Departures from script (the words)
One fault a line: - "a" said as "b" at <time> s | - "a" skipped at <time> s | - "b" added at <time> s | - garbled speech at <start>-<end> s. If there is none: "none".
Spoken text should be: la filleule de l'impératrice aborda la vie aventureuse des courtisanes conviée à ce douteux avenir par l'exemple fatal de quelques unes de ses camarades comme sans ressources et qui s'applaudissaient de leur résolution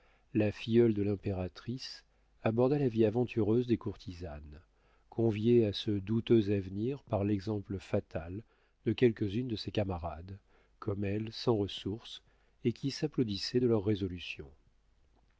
- "elle" added at 11.0 s